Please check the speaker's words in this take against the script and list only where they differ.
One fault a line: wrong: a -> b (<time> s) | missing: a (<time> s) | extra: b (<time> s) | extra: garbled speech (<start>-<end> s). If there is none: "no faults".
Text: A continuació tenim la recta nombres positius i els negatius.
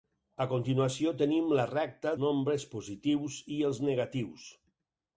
no faults